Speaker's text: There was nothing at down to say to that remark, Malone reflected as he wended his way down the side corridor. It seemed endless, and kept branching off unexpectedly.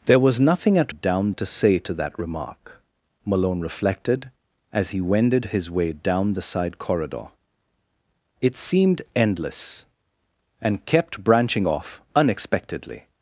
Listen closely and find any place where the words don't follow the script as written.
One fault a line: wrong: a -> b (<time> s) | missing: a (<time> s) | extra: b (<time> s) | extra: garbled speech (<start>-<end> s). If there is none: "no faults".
no faults